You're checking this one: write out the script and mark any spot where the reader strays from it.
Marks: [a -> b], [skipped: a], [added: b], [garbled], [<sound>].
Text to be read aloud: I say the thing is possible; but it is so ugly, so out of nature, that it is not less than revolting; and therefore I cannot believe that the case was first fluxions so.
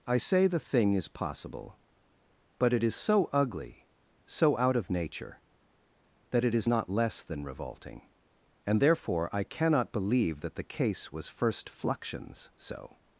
I say the thing is possible; but it is so ugly, so out of nature, that it is not less than revolting; and therefore I cannot believe that the case was first fluxions so.